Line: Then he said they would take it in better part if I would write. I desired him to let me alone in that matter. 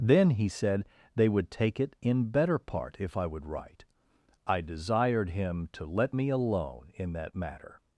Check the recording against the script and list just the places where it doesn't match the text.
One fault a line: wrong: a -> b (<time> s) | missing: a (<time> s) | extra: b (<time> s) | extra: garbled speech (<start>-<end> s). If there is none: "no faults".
no faults